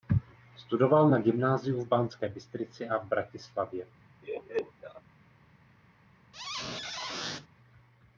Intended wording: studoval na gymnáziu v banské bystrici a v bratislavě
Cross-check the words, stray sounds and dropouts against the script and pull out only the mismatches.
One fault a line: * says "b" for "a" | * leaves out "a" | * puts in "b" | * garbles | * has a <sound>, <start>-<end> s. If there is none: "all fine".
* has a laugh, 4.2-5.0 s
* has a squeak, 6.3-7.5 s